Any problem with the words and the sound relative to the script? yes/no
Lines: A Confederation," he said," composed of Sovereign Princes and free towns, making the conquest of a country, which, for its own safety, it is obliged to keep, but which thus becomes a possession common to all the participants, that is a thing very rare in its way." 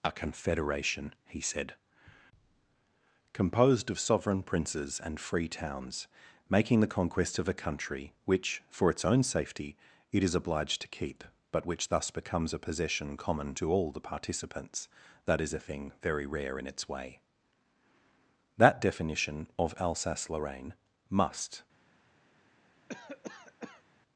yes